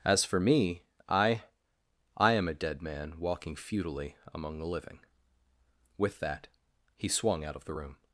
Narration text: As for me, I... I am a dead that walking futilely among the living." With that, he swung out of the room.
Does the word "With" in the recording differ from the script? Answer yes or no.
no